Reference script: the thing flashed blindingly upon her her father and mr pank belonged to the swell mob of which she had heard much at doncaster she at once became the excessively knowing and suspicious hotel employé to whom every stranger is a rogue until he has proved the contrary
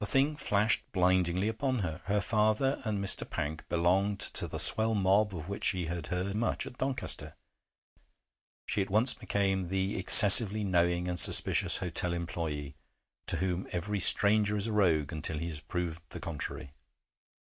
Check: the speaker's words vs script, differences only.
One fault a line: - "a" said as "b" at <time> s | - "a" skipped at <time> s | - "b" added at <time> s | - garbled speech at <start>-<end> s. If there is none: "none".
none